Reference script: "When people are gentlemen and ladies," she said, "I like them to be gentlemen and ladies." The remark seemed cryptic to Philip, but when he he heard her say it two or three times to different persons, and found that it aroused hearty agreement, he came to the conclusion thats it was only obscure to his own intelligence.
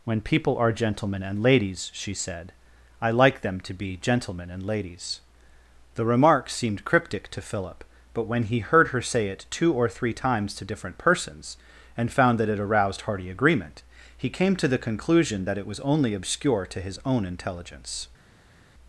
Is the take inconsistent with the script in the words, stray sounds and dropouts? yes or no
yes